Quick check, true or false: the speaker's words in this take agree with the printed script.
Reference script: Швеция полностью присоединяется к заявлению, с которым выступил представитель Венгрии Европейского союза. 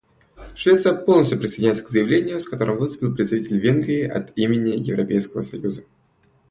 false